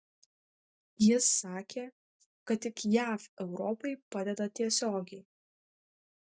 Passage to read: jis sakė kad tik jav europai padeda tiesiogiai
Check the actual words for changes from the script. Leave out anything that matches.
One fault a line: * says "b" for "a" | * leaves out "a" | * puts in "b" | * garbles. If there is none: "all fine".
all fine